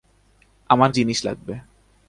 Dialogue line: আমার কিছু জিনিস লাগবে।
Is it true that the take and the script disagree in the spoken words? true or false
true